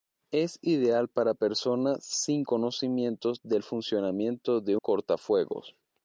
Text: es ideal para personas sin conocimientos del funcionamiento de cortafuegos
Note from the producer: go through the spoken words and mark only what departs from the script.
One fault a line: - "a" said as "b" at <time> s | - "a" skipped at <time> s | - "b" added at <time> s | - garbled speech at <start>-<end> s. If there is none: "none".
none